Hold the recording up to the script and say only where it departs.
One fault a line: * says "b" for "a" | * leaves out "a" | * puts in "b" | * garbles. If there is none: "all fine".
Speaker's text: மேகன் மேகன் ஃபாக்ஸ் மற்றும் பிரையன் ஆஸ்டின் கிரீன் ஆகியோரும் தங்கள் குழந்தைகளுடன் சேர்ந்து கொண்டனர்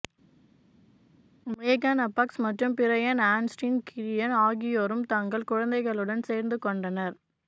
* leaves out "மேகன்"